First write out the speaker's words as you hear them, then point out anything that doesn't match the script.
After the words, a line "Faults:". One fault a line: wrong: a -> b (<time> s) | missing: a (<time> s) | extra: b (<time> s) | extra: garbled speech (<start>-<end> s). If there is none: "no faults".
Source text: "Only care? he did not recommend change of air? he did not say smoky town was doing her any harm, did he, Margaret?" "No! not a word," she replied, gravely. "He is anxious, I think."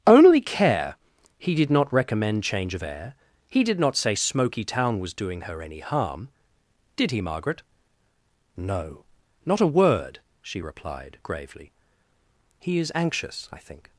"Only care? he did not recommend change of air? he did not say smoky town was doing her any harm, did he, Margaret?" "No! not a word," she replied, gravely. "He is anxious, I think."
Faults:
no faults